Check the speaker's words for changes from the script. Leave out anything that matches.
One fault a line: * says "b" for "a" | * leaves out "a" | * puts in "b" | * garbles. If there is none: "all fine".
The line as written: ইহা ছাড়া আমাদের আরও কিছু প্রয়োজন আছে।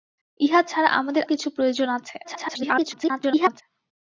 * leaves out "আরও"
* garbles